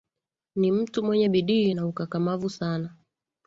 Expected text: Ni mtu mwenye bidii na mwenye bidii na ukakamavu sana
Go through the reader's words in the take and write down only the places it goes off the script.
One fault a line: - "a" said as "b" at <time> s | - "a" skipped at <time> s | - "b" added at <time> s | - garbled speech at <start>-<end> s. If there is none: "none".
- "mwenye bidii na" skipped at 1.9 s